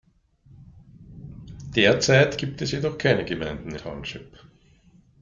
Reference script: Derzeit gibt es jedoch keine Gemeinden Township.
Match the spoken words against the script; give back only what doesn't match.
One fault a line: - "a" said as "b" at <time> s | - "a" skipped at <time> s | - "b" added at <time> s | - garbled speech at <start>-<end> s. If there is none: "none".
none